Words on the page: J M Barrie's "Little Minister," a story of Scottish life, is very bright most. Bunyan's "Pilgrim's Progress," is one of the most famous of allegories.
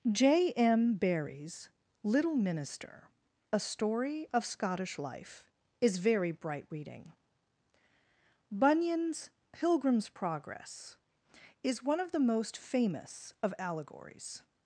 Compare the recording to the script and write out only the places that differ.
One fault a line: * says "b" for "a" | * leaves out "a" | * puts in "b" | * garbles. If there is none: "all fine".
* says "reading" for "most"